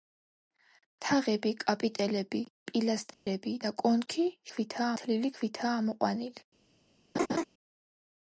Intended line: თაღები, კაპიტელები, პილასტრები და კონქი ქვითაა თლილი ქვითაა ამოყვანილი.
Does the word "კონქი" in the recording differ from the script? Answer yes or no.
no